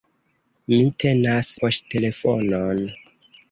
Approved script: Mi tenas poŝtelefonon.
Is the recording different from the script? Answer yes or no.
no